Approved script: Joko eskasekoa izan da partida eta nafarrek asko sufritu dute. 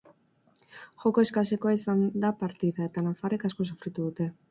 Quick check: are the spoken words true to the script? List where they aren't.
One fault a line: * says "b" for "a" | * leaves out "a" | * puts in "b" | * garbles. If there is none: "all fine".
all fine